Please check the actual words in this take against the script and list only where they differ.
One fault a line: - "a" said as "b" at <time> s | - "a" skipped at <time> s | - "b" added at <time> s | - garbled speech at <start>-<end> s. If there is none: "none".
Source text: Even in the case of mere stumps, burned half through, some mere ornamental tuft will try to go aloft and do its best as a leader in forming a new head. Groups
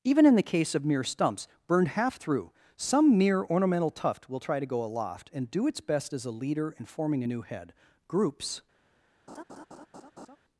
none